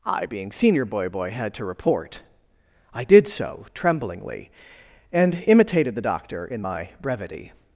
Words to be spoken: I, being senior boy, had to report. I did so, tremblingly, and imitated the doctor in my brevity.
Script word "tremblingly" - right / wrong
right